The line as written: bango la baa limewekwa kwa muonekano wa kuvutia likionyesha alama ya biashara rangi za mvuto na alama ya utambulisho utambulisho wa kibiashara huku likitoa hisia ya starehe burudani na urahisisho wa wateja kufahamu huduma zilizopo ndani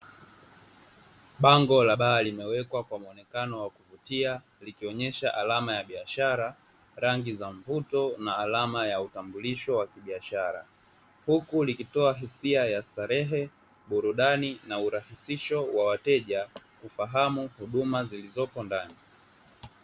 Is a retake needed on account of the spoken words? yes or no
yes